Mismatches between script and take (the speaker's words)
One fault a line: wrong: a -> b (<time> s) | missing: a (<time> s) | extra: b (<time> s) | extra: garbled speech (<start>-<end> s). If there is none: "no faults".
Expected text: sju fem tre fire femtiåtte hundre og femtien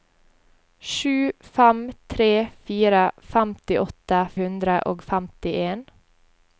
no faults